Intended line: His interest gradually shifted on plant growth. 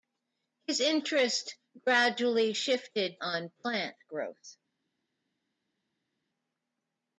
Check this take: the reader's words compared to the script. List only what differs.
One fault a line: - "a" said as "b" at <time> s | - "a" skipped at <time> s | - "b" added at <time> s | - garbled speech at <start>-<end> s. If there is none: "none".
none